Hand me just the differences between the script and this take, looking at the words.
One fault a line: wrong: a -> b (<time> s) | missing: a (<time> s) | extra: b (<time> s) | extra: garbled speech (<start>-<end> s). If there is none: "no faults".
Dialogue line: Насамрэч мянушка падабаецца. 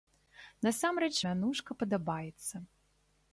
no faults